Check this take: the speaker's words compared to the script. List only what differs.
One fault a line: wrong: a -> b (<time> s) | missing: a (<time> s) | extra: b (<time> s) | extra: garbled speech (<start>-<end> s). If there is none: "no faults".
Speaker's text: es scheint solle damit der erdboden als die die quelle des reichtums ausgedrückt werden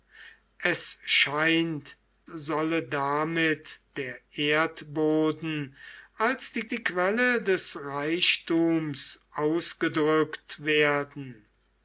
no faults